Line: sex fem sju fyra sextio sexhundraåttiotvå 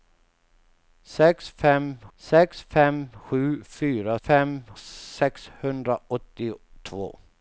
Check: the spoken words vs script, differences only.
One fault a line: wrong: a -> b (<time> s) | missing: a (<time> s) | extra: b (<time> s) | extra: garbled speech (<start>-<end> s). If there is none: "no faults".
extra: sex fem (2.2 s)
wrong: sextio -> fem (4.1 s)